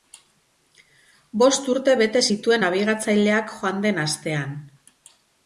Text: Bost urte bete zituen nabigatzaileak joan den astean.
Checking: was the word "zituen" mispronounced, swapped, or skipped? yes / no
no